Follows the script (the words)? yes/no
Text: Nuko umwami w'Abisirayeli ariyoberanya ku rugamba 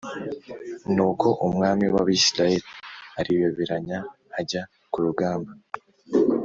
no